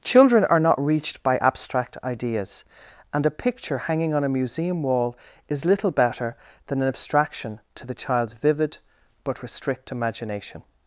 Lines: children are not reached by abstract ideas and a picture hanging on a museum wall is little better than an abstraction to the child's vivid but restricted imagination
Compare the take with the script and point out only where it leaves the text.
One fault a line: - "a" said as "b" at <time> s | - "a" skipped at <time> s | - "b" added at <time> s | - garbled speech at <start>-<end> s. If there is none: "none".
- "restricted" said as "restrict" at 9.4 s